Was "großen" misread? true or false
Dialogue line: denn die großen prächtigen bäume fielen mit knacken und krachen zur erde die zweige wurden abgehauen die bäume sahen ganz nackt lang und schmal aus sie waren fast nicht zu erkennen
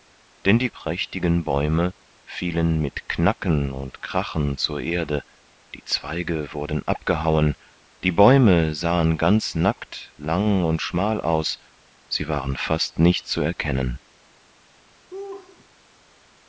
true